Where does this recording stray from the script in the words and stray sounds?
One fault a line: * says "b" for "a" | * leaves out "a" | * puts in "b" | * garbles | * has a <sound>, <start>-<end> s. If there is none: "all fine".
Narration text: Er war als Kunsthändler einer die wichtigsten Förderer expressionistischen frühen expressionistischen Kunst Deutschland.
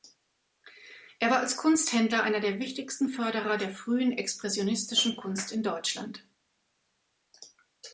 * says "der" for "die"
* says "der" for "expressionistischen"
* puts in "in"